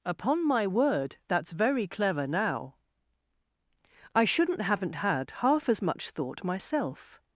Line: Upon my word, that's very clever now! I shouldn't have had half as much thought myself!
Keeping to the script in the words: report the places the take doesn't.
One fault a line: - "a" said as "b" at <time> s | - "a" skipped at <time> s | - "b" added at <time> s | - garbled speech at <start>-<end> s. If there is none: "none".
- "have" said as "haven't" at 4.6 s